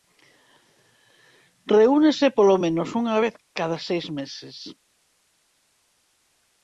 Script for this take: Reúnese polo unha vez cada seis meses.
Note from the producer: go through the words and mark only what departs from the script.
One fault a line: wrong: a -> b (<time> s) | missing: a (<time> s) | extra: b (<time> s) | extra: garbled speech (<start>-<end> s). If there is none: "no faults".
extra: menos (2.6 s)